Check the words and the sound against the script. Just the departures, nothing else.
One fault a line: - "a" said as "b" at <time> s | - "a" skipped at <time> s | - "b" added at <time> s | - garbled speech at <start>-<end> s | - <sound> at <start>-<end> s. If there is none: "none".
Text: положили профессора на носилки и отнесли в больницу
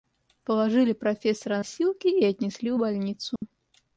- "на" skipped at 1.6 s
- dropout at 3.4-3.4 s